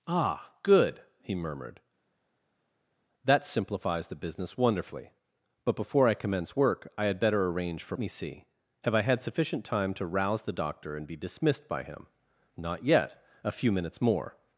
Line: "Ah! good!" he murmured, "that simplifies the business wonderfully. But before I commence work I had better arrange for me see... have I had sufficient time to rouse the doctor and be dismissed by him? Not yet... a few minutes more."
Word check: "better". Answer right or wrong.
right